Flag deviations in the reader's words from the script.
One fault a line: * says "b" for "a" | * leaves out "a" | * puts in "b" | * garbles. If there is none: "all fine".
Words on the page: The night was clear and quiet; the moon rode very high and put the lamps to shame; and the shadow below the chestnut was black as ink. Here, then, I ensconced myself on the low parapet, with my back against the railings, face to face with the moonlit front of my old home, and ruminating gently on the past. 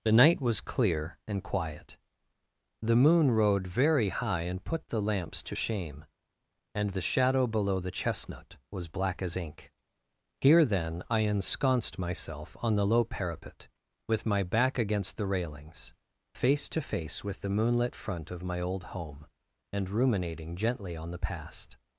all fine